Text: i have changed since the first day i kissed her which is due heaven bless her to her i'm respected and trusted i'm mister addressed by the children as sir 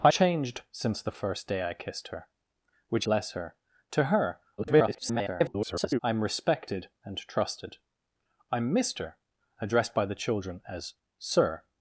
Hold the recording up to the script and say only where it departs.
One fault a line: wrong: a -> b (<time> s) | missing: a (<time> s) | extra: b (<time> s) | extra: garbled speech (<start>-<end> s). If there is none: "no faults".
missing: have (0.1 s)
missing: is due heaven (3.1 s)
extra: garbled speech (4.6-6.0 s)